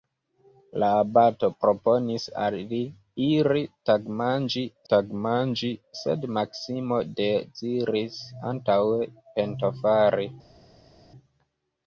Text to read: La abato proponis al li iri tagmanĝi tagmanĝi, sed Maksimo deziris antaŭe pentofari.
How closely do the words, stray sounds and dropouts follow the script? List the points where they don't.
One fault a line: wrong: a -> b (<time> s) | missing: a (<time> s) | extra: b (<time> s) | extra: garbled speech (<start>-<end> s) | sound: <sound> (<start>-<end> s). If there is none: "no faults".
no faults